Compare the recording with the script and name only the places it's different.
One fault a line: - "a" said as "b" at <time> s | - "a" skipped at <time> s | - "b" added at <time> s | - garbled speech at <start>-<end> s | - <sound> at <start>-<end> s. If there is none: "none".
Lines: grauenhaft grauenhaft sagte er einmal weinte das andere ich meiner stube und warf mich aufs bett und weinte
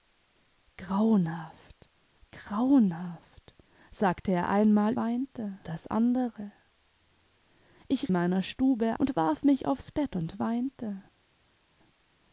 none